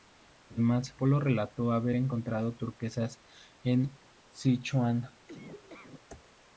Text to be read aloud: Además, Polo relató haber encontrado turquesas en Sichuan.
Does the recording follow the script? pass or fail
pass